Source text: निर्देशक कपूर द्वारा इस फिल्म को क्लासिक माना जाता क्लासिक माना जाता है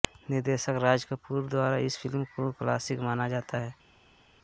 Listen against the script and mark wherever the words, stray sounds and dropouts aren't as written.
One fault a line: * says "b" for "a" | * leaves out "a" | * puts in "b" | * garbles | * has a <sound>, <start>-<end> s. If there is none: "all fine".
* puts in "राज"
* leaves out "क्लासिक माना जाता"